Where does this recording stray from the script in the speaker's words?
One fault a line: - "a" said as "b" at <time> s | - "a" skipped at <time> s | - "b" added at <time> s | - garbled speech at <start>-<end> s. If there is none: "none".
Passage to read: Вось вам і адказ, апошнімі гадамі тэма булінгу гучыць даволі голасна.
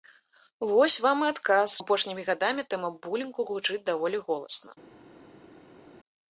none